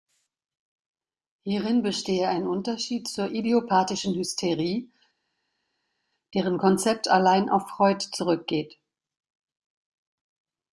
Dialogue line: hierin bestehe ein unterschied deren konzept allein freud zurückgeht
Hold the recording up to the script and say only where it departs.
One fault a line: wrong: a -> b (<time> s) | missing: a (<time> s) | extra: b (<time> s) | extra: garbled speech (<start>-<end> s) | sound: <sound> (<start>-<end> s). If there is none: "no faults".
extra: zur idiopathischen hysterie (3.1 s)
extra: auf (7.5 s)